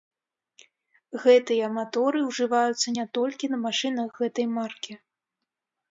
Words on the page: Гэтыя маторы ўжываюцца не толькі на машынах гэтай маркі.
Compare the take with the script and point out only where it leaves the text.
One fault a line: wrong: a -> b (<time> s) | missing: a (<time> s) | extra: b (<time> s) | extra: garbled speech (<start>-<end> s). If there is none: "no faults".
no faults